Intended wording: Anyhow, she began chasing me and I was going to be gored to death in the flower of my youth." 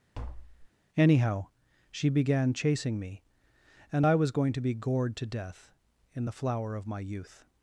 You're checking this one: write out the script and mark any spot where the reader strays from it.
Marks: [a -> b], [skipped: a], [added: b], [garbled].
Anyhow, she began chasing me and I was going to be gored to death in the flower of my youth."